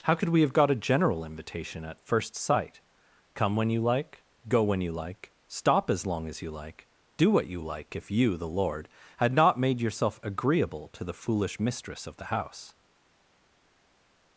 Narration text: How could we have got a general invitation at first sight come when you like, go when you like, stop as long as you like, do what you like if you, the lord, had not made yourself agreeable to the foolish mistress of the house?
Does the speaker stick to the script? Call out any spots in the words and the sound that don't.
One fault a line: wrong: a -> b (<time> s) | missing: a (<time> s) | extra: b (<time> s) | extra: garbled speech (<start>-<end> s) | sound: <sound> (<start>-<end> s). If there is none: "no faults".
no faults